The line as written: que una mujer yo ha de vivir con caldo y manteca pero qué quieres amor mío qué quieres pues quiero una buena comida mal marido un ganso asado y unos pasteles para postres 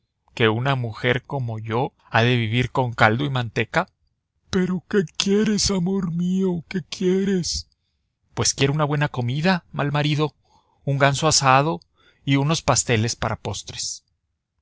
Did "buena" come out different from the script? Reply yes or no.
no